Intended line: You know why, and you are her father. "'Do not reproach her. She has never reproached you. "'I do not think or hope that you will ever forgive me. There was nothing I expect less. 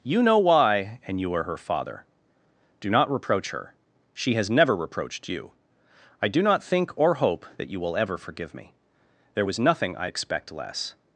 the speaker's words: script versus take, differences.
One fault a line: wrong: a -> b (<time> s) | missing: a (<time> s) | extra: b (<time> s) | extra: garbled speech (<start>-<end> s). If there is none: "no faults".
no faults